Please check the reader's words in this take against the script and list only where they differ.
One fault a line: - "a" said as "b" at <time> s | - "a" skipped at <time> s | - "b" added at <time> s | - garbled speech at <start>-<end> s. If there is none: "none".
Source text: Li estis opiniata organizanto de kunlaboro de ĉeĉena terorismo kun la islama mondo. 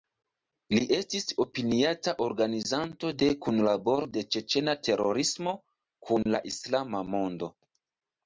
none